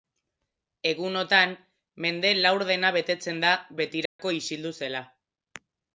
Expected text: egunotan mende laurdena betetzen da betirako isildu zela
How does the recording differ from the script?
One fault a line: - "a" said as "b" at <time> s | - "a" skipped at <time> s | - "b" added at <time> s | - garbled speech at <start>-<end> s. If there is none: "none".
none